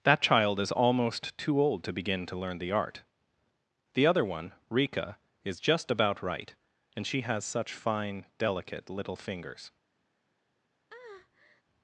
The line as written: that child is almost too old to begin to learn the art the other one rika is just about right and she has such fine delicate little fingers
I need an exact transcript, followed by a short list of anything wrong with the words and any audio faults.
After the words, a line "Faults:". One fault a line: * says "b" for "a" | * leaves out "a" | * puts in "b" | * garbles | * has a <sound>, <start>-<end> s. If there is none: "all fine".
that child is almost too old to begin to learn the art the other one rika is just about right and she has such fine delicate little fingers
Faults:
* has a breath, 10.9-11.6 s